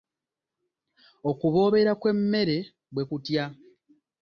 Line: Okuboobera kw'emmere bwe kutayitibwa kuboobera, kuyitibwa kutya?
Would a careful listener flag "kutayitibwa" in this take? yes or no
yes